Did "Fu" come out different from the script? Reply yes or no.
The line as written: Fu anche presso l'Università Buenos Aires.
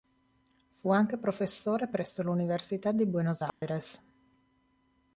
no